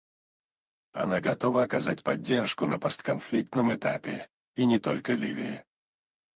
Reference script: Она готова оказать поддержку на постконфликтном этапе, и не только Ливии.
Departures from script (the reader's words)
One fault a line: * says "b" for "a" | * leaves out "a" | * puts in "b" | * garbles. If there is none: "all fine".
all fine